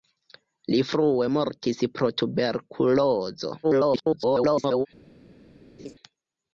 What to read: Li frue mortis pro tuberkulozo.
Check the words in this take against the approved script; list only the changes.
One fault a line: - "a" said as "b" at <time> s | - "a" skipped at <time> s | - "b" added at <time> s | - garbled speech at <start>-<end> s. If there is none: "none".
- garbled speech at 3.6-4.9 s